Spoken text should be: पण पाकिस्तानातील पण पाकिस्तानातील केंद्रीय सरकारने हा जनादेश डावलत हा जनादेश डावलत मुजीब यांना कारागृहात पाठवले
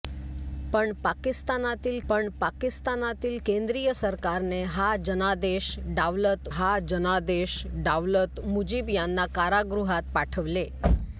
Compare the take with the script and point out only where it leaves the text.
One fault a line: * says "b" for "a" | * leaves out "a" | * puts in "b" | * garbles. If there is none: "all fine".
all fine